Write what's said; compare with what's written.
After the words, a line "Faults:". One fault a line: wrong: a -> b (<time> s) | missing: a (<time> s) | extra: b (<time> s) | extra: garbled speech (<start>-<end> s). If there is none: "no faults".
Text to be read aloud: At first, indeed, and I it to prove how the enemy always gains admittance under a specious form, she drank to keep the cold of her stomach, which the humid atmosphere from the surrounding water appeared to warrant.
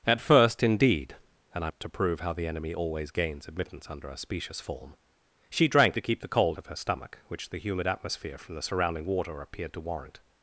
At first, indeed, and I it to prove how the enemy always gains admittance under a specious form, she drank to keep the cold of her stomach, which the humid atmosphere from the surrounding water appeared to warrant.
Faults:
no faults